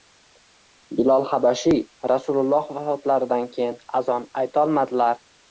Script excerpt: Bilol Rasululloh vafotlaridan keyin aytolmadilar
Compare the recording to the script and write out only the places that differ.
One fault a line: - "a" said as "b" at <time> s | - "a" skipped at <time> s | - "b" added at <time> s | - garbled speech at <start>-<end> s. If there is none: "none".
- "habashiy" added at 1.3 s
- "azon" added at 4.0 s